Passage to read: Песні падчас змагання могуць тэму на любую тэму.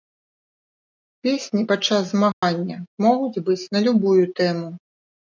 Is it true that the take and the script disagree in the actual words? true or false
true